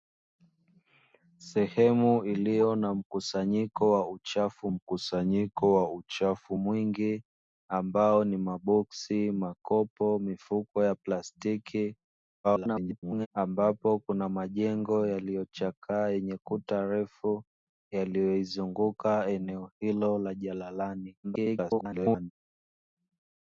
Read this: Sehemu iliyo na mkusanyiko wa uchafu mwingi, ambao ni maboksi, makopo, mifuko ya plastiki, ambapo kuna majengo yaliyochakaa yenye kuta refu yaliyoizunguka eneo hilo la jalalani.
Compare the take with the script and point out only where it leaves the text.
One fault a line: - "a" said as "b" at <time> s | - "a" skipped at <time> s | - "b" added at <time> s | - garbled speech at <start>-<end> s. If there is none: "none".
- "mkusanyiko wa uchafu" added at 4.7 s
- garbled speech at 12.4-13.3 s
- garbled speech at 21.2-22.3 s